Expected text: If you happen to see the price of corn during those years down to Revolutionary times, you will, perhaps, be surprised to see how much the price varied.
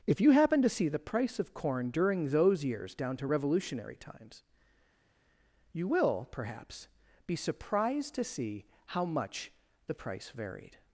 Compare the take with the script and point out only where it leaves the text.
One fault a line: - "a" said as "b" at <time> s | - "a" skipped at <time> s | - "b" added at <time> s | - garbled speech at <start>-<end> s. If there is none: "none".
none